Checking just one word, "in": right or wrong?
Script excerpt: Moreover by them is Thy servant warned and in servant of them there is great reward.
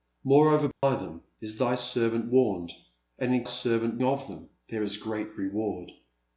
right